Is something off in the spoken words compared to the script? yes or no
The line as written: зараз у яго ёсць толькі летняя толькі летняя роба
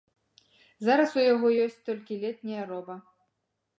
yes